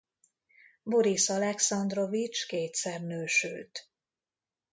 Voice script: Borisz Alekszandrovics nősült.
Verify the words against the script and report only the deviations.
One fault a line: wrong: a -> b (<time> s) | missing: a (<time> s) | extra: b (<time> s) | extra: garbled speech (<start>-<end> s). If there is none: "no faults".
extra: kétszer (2.5 s)